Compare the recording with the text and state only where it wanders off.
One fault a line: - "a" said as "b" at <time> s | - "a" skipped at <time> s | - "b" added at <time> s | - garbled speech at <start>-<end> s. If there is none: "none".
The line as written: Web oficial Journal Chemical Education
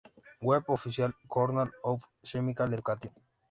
- "of" added at 1.8 s